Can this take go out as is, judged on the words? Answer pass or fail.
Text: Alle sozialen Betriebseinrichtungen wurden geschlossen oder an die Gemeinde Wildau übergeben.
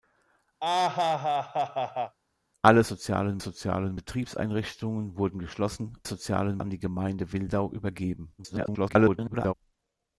fail